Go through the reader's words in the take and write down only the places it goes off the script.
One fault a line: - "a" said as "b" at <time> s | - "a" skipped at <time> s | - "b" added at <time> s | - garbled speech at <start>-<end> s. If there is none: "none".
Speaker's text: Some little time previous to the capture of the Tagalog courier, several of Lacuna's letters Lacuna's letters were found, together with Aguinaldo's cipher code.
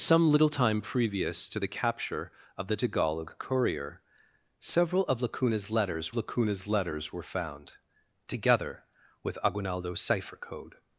none